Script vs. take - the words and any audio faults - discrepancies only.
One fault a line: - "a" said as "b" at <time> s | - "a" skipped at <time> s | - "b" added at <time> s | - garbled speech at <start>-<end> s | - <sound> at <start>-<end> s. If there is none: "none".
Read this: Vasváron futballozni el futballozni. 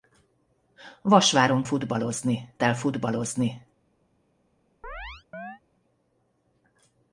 - chirp at 4.8-5.6 s